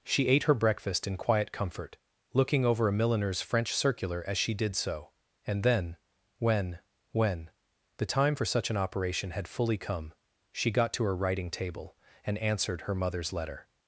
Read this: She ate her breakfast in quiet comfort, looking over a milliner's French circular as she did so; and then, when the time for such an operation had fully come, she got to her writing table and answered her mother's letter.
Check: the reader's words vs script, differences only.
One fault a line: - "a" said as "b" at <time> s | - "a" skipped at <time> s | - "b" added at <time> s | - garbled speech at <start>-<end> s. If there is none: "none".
- "when" added at 7.1 s